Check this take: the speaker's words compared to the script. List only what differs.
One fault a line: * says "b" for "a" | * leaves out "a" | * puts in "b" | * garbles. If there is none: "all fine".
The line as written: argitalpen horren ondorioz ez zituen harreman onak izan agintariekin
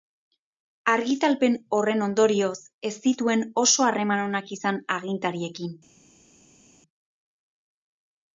* puts in "oso"